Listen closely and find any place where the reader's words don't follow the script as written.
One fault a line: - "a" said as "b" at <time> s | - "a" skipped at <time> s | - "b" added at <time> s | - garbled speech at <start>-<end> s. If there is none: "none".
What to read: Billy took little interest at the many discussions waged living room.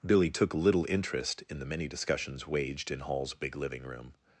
- "at" said as "in" at 1.5 s
- "in Hall's big" added at 2.9 s